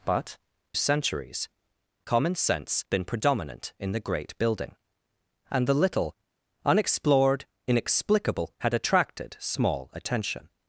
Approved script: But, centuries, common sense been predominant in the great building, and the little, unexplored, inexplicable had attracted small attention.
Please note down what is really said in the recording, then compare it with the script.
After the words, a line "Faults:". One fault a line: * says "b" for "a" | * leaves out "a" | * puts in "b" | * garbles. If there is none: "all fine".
But, centuries, common sense been predominant in the great building, and the little, unexplored, inexplicable had attracted small attention.
Faults:
all fine